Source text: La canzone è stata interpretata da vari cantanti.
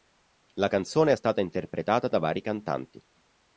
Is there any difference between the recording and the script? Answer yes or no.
no